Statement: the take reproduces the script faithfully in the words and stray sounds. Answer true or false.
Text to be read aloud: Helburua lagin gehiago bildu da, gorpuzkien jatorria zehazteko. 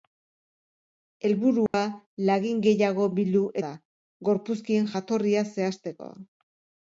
false